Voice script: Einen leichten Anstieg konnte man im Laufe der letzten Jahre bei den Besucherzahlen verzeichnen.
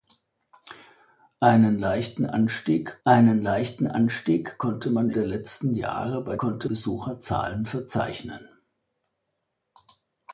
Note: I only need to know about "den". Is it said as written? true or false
false